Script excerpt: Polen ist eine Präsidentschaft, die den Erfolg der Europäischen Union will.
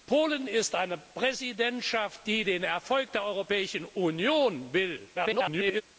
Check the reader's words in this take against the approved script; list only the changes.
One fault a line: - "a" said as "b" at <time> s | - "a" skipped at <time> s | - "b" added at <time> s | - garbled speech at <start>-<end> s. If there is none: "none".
- garbled speech at 5.1-5.8 s